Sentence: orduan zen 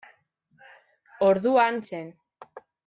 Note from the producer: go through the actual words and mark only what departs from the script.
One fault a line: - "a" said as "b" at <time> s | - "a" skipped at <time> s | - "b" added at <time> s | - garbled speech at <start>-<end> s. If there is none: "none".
none